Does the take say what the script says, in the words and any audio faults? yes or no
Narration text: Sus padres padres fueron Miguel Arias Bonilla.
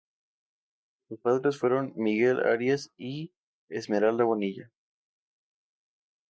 no